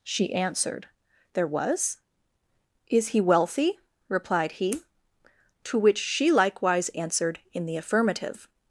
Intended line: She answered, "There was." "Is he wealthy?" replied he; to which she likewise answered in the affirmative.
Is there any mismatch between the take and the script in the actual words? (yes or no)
no